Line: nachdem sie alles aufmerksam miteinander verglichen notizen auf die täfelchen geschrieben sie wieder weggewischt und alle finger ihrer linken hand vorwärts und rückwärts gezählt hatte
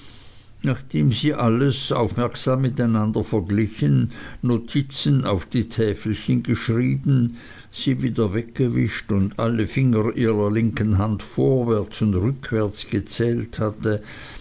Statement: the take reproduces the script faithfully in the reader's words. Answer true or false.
true